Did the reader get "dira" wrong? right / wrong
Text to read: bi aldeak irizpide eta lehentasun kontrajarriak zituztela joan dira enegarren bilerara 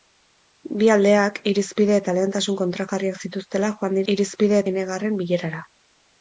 wrong